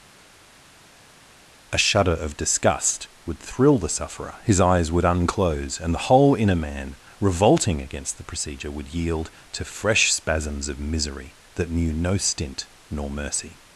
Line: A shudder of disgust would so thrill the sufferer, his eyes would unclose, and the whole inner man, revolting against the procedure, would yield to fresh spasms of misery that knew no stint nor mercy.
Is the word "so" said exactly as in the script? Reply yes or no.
no